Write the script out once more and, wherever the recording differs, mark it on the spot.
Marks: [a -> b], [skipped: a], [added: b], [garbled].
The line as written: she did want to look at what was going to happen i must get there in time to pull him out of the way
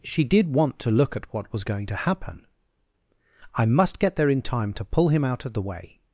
she did want to look at what was going to happen i must get there in time to pull him out of the way